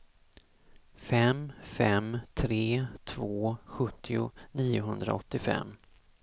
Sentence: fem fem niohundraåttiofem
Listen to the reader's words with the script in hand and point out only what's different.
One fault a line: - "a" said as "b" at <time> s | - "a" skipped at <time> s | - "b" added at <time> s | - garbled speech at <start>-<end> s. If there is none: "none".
- "tre två sjuttio" added at 2.3 s